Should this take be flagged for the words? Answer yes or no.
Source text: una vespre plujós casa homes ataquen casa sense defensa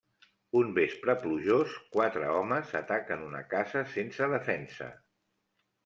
yes